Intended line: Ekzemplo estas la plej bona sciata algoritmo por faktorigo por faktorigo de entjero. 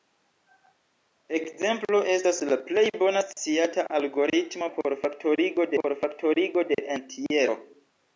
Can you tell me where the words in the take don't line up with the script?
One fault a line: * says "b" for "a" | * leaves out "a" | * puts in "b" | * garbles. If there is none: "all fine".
all fine